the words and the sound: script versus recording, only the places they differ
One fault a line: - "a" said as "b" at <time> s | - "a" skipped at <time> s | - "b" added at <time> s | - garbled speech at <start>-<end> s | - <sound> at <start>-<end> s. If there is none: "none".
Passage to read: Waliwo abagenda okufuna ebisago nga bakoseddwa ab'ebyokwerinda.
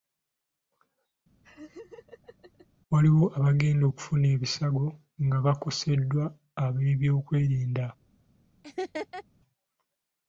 - laugh at 1.4-2.7 s
- laugh at 8.6-9.2 s